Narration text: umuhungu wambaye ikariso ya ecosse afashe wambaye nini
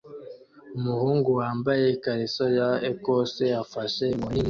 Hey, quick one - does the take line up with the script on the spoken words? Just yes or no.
no